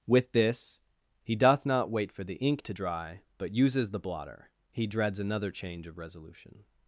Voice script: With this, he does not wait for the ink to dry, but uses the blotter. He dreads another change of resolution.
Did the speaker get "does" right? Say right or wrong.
wrong